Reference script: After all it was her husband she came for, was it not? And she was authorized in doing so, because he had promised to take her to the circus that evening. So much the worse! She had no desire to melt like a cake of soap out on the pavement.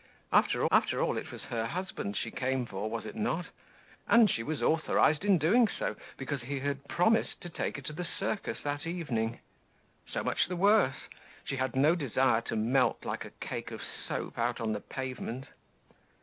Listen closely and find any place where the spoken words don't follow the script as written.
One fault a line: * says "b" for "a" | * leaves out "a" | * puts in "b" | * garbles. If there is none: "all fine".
* puts in "after"